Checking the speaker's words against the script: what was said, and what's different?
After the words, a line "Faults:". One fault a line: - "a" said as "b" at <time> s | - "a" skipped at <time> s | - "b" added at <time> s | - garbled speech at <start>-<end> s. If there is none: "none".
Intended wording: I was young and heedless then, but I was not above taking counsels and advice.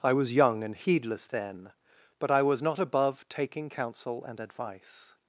I was young and heedless then, but I was not above taking counsel and advice.
Faults:
- "counsels" said as "counsel" at 3.7 s